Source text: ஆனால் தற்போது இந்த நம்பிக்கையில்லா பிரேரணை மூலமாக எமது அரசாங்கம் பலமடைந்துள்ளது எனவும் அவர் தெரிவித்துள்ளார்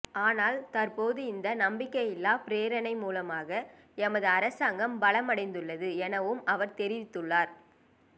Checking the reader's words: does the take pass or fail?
pass